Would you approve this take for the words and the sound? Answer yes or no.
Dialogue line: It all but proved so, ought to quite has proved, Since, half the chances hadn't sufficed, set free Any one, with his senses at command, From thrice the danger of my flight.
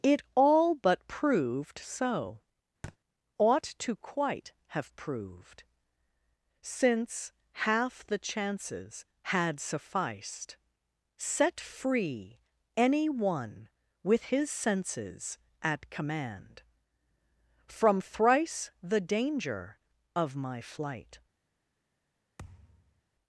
no